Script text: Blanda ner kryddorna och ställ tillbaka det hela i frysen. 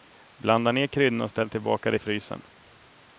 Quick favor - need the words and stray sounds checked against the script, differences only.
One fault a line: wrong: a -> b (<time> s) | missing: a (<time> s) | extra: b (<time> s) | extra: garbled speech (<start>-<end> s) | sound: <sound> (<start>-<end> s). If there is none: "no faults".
missing: hela (2.0 s)